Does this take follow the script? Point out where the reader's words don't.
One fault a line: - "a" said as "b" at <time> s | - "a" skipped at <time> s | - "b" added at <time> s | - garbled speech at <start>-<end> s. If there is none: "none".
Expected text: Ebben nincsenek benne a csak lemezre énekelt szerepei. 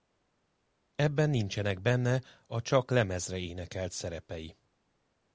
none